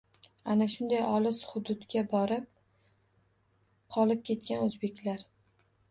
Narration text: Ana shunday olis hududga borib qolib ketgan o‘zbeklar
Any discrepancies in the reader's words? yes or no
no